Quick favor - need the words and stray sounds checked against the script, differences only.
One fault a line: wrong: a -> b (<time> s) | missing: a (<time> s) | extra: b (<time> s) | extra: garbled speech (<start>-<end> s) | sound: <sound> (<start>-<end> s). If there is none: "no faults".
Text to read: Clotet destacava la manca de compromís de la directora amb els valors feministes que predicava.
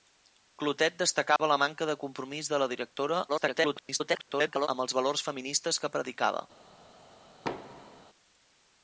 sound: dropout (1.4-1.4 s)
extra: garbled speech (3.3-4.7 s)
sound: thud (7.4-8.1 s)